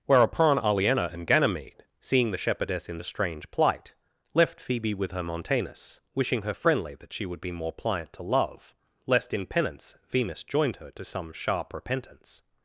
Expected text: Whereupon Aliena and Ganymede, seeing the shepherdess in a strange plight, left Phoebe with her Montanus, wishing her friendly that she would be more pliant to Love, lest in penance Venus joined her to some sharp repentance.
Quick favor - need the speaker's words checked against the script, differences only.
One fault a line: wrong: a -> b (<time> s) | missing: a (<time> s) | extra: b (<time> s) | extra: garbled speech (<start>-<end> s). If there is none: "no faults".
no faults